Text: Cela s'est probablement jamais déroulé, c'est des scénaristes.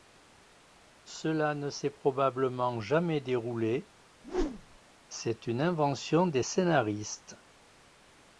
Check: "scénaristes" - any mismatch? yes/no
no